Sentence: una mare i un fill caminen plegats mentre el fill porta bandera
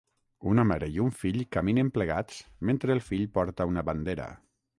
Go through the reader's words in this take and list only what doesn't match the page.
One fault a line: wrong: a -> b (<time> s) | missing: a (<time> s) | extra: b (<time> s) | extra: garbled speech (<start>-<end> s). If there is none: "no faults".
extra: una (3.7 s)